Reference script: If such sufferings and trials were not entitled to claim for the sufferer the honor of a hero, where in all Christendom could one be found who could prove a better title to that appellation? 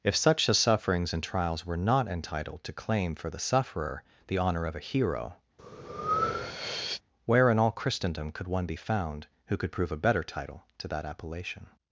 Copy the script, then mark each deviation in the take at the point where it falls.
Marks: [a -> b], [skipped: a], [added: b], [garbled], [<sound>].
If such [added: a] sufferings and trials were not entitled to claim for the sufferer the honor of a hero, [breath] where in all Christendom could one be found who could prove a better title to that appellation?